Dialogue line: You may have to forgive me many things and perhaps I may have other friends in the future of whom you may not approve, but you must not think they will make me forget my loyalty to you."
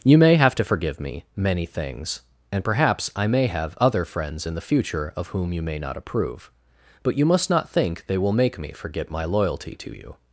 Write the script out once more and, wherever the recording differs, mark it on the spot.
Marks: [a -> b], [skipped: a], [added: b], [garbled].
You may have to forgive me many things and perhaps I may have other friends in the future of whom you may not approve, but you must not think they will make me forget my loyalty to you."